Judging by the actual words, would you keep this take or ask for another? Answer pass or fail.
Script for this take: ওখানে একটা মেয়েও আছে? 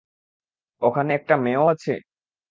pass